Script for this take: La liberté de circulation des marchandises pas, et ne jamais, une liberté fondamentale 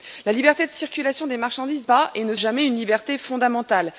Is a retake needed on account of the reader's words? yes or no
no